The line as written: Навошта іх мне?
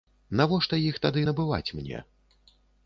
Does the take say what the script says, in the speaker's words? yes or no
no